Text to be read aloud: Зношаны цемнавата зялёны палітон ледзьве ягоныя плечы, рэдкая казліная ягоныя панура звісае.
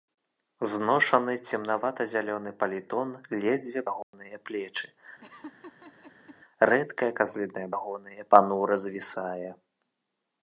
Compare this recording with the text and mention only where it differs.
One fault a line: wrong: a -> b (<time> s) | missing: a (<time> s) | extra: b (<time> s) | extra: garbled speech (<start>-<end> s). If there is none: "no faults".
no faults